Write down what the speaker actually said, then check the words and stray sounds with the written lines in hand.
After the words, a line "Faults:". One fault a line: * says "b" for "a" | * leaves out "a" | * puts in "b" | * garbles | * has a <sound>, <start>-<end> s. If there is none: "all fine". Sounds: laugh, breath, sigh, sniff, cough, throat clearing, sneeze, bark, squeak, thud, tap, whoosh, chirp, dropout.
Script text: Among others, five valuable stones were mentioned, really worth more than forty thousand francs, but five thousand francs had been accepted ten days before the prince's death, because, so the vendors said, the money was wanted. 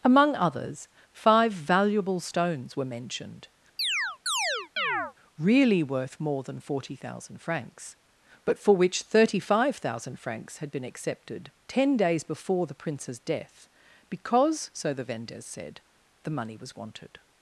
Among others, five valuable stones were mentioned, really worth more than forty thousand francs, but for which thirty five thousand francs had been accepted ten days before the prince's death, because, so the vendors said, the money was wanted.
Faults:
* has a chirp, 3.8-5.1 s
* puts in "for which thirty"